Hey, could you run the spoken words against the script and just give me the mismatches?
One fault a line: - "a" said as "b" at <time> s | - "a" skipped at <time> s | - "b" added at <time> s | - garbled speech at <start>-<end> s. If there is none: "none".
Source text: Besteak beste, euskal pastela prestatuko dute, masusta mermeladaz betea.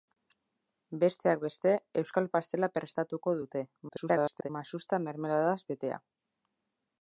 - garbled speech at 3.9-4.5 s